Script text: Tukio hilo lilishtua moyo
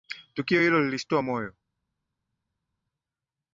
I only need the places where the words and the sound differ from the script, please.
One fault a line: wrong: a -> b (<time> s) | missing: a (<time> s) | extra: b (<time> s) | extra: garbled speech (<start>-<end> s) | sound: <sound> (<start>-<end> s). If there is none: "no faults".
no faults